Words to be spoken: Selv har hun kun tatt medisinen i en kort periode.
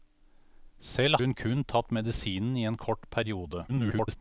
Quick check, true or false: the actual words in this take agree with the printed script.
false